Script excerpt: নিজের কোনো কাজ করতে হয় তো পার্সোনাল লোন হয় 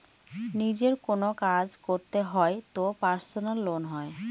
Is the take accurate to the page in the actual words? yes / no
yes